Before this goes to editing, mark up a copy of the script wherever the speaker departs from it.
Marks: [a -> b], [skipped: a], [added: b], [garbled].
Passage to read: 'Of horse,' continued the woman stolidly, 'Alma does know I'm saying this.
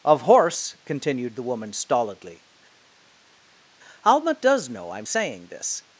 'Of horse,' continued the woman stolidly, 'Alma does know I'm saying this.